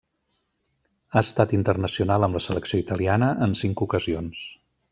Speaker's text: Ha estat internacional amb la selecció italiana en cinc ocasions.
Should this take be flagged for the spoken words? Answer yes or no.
no